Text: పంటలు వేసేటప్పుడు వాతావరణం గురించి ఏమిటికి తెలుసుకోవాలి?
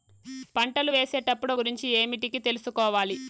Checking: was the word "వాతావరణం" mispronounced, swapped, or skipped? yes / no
yes